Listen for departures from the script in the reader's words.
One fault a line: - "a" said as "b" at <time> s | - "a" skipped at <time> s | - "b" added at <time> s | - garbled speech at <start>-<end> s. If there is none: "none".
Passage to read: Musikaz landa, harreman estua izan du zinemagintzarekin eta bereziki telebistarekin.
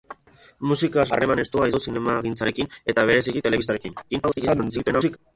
- "landa" skipped at 1.1 s
- "izan" skipped at 1.7 s
- garbled speech at 4.1-5.2 s